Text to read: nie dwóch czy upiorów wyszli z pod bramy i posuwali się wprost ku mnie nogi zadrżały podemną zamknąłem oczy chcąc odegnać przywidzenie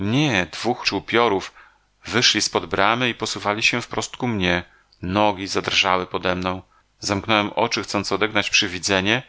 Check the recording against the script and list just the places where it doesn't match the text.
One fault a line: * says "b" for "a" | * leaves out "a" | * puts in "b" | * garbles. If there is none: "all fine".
all fine